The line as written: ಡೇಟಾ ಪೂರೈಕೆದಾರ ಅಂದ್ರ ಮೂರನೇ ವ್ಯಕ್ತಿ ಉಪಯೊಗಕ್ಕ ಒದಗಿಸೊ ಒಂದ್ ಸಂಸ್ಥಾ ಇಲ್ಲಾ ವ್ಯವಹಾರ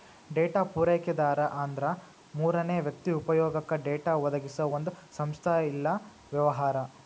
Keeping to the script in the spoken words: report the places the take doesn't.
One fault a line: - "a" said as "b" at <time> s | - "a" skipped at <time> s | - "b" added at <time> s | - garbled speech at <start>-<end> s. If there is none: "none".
- "ಡೇಟಾ" added at 3.8 s